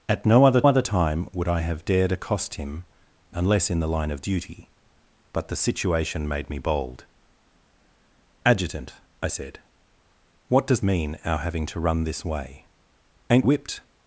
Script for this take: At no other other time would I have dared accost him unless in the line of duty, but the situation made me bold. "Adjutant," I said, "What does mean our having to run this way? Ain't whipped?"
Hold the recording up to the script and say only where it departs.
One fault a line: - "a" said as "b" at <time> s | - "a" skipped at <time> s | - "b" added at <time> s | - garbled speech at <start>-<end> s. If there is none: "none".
none